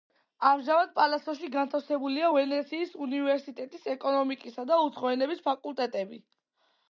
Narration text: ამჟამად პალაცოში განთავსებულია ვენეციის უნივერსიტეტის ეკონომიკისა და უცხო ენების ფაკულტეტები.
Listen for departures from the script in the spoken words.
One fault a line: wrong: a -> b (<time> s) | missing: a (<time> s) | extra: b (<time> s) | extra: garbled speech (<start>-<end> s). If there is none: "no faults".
no faults